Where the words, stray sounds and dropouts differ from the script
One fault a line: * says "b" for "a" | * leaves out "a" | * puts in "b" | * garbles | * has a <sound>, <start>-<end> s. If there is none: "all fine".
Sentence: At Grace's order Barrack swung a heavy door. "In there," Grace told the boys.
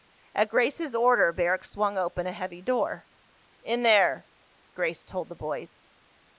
* puts in "open"